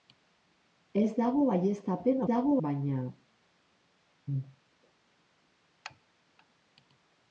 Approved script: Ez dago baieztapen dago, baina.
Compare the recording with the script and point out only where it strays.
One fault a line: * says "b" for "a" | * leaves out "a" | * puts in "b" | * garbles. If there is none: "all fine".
all fine